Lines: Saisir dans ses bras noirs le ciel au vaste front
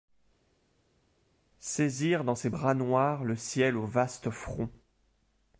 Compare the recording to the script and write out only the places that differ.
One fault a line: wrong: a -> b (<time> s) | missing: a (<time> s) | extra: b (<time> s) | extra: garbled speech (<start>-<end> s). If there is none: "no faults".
no faults